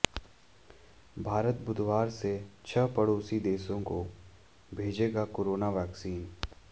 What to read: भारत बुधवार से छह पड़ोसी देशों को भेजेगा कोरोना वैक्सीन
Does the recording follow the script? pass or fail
pass